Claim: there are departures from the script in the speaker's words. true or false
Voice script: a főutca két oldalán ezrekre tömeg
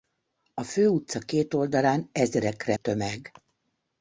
false